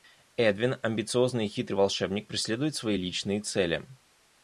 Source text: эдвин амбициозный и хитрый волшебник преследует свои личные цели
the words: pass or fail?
pass